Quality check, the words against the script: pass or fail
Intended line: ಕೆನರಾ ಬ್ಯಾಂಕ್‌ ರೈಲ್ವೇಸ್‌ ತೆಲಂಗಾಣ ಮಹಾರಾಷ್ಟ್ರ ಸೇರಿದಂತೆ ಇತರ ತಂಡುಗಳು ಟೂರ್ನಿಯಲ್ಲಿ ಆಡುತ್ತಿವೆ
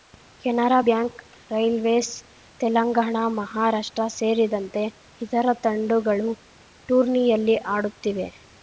pass